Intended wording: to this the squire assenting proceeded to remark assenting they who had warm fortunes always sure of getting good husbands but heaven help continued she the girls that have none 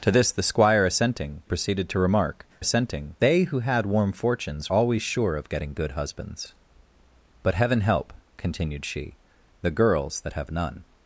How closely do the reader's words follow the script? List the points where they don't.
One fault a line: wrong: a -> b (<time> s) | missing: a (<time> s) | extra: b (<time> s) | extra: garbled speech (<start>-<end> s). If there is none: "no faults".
no faults